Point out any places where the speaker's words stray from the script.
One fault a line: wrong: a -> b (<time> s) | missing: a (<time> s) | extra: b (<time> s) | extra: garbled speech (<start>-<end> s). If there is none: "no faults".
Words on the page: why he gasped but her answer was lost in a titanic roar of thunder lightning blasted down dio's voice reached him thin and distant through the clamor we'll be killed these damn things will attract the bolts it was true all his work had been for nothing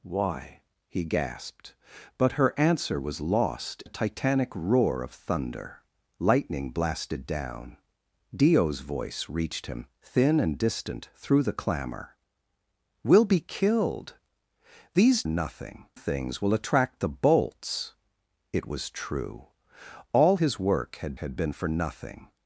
missing: in (3.8 s)
wrong: damn -> nothing (15.3 s)
extra: had (21.1 s)